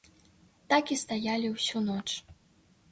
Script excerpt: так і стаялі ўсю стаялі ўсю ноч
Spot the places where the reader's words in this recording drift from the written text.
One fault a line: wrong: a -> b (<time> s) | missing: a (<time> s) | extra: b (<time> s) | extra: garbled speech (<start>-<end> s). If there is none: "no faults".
missing: стаялі ўсю (1.9 s)